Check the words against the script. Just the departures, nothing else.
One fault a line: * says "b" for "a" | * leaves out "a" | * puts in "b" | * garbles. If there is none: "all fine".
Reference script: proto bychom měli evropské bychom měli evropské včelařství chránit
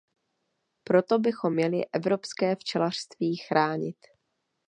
* leaves out "bychom měli evropské"